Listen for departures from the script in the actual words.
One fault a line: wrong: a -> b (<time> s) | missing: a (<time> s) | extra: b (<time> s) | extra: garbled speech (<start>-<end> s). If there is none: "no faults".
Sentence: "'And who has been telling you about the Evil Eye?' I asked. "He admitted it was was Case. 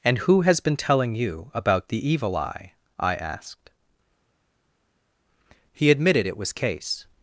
missing: was (6.5 s)